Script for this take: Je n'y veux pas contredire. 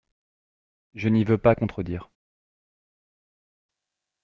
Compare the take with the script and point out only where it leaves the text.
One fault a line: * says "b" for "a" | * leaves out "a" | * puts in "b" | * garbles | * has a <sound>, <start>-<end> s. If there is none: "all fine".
all fine